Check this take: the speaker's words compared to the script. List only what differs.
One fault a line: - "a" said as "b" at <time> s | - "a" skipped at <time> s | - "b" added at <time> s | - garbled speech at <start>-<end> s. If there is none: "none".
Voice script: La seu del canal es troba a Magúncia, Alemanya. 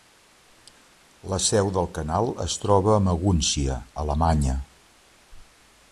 none